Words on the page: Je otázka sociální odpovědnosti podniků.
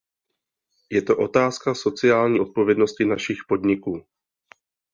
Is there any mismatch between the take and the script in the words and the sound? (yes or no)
yes